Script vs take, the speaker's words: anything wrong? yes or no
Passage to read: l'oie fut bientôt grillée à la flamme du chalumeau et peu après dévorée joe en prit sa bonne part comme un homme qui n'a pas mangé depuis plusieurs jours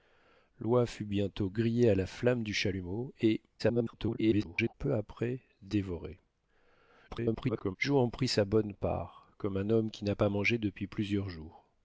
yes